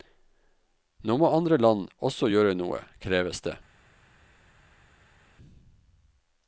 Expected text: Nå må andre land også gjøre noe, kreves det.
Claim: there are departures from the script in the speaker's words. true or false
false